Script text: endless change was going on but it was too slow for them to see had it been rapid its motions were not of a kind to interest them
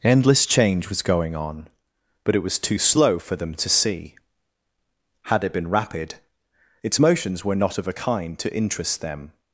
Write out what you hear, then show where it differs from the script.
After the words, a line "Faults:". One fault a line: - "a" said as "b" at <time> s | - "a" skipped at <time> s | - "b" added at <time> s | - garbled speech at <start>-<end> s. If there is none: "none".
endless change was going on but it was too slow for them to see had it been rapid its motions were not of a kind to interest them
Faults:
none